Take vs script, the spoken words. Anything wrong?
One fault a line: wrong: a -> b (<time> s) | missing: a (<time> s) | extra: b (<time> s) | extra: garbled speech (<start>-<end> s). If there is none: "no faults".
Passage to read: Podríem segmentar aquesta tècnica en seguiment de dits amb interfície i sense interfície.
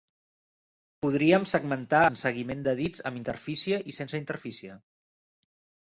missing: aquesta tècnica (2.0 s)